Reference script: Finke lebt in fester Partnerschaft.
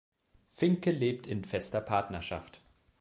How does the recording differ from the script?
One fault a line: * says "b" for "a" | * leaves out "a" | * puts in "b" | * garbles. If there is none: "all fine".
all fine